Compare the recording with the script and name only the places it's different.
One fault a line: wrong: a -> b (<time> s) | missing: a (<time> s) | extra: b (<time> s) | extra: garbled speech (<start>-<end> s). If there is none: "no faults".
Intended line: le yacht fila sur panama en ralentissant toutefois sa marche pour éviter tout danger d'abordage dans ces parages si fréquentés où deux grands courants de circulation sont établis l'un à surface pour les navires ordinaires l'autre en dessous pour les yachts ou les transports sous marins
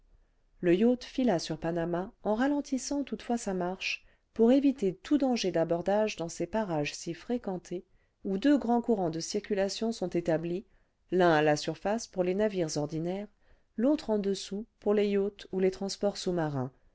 extra: la (11.4 s)